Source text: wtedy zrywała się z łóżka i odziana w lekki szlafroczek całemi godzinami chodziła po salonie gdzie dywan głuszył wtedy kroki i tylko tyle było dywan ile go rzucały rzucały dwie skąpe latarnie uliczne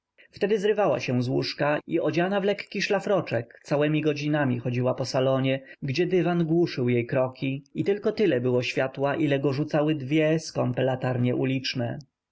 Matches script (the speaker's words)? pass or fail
fail